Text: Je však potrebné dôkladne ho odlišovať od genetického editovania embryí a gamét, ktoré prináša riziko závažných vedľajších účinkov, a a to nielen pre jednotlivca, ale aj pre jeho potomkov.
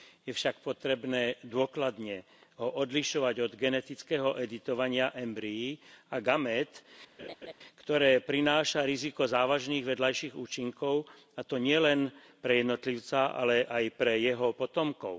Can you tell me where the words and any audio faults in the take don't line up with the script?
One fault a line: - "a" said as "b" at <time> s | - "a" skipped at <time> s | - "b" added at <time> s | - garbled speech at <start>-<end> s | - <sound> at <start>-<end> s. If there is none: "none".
- laugh at 7.2-7.5 s
- "a" skipped at 11.4 s